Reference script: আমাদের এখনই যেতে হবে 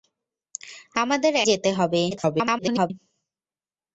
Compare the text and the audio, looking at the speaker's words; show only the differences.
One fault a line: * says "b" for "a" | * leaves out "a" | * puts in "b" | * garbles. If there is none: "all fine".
* leaves out "এখনই"
* garbles